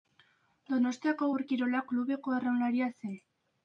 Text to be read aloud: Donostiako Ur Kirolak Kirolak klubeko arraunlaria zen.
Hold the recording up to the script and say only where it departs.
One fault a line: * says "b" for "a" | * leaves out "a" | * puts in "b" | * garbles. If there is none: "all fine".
* leaves out "Kirolak"